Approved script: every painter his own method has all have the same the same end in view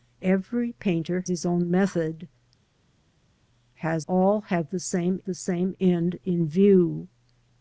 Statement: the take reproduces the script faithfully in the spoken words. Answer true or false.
true